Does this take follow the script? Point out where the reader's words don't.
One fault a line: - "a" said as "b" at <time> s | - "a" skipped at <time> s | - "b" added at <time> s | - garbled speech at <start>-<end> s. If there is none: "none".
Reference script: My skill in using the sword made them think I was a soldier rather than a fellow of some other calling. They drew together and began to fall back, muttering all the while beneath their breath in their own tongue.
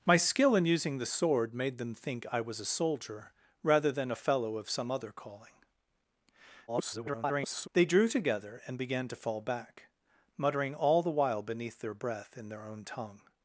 - garbled speech at 6.7-7.7 s